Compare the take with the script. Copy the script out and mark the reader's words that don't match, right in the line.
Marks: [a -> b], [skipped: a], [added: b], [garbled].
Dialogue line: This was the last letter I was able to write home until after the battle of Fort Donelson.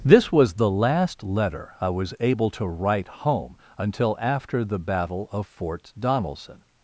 This was the last letter I was able to write home until after the battle of Fort Donelson.